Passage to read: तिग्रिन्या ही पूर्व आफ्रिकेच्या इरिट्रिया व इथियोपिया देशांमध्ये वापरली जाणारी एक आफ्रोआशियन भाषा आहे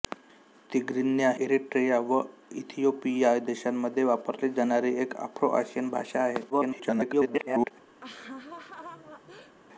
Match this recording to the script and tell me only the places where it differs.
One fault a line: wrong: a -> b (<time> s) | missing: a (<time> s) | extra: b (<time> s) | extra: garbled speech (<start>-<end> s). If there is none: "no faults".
missing: ही पूर्व आफ्रिकेच्या (1.3 s)
extra: garbled speech (6.5-7.7 s)